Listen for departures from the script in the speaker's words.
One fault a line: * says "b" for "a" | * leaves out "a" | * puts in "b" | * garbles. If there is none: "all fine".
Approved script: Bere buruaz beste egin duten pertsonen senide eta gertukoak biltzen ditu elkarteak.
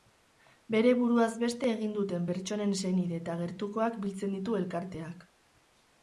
all fine